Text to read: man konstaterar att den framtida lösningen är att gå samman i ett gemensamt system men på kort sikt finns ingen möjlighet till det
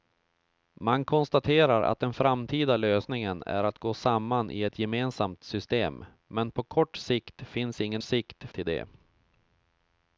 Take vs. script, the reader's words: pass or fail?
fail